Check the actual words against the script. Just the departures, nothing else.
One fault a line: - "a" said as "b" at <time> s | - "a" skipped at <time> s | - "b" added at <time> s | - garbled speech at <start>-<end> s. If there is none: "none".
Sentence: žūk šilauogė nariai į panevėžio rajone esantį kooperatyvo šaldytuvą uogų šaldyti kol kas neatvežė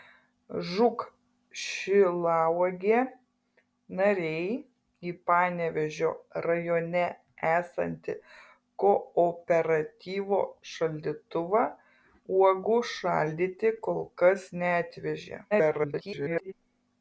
- garbled speech at 15.5-16.5 s